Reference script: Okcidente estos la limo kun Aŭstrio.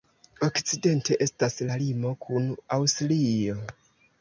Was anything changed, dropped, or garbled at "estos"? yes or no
yes